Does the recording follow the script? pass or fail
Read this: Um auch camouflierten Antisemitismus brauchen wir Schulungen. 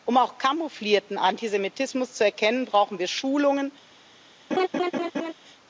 fail